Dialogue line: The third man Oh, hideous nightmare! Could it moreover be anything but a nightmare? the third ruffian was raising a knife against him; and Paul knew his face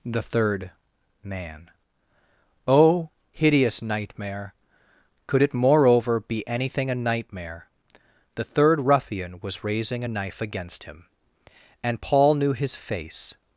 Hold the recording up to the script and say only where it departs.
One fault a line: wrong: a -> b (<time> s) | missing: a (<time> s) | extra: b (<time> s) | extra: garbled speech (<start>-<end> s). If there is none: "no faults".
missing: but (6.9 s)